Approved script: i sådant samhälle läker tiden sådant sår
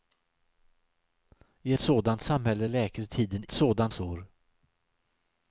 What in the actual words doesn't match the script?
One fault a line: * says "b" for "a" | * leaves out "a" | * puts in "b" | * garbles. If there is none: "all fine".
all fine